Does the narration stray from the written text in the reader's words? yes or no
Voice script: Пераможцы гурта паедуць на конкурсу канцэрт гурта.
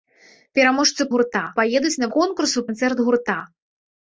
no